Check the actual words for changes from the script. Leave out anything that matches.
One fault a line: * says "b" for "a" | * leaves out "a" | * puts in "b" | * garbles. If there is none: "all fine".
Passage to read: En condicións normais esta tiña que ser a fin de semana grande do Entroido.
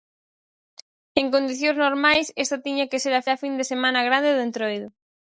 * puts in "a"